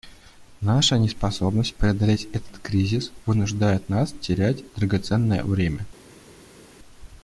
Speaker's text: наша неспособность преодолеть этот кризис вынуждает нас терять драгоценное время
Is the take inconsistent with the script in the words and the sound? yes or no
no